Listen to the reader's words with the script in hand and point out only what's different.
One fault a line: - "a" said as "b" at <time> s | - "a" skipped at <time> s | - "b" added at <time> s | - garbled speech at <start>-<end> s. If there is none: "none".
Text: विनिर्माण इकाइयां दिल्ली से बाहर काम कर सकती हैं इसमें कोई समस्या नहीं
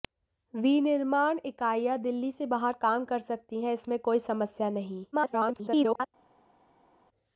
- garbled speech at 5.1-6.1 s